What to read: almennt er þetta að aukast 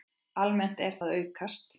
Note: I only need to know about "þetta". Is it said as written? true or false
false